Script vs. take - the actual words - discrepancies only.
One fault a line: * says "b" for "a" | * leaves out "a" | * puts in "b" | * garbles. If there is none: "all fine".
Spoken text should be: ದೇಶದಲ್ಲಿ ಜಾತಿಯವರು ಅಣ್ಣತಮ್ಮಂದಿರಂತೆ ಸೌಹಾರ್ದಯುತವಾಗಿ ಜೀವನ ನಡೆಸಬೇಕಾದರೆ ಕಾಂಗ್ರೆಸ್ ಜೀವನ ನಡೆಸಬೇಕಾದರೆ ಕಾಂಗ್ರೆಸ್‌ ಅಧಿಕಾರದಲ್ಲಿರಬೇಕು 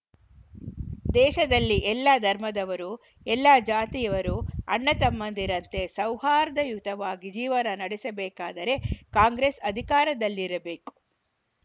* puts in "ಎಲ್ಲ ಧರ್ಮದವರು ಎಲ್ಲ"
* leaves out "ಜೀವನ ನಡೆಸಬೇಕಾದರೆ ಕಾಂಗ್ರೆಸ್"